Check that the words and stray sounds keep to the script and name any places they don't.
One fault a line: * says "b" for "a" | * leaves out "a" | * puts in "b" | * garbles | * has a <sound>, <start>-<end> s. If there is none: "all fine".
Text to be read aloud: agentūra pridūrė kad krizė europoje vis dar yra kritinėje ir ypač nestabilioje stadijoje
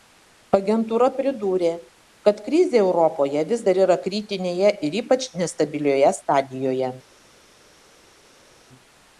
all fine